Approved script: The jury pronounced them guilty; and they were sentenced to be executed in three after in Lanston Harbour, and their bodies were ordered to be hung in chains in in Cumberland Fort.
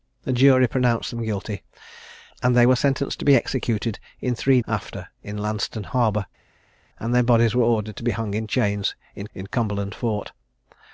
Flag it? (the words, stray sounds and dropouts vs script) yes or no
no